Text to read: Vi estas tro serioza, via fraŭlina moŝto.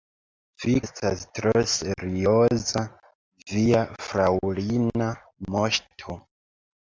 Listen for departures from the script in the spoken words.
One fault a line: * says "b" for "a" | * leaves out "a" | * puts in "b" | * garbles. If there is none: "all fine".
all fine